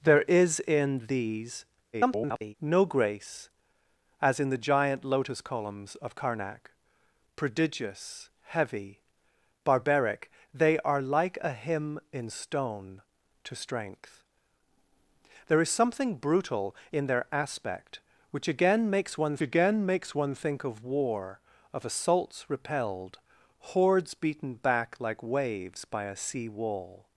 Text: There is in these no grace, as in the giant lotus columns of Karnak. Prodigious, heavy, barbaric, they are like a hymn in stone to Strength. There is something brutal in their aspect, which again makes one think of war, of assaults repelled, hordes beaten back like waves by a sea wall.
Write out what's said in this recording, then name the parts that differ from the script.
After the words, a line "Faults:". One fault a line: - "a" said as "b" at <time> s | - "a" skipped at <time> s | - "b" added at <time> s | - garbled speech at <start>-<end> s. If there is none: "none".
There is in these [garbled] no grace, as in the giant lotus columns of Karnak. Prodigious, heavy, barbaric, they are like a hymn in stone to Strength. There is something brutal in their aspect, which again makes one again makes one think of war, of assaults repelled, hordes beaten back like waves by a sea wall.
Faults:
- garbled speech at 1.9-2.5 s
- "again makes one" added at 19.4 s